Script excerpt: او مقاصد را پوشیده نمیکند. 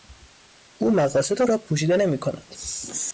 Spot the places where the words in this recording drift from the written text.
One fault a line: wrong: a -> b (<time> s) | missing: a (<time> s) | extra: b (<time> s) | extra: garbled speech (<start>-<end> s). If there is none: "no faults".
no faults